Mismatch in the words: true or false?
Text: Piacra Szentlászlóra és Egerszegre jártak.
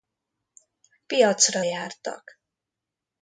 true